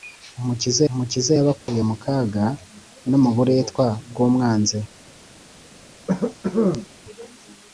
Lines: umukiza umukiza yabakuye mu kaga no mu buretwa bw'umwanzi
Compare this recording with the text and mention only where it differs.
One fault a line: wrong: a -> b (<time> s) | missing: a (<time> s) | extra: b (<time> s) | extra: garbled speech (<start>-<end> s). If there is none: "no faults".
no faults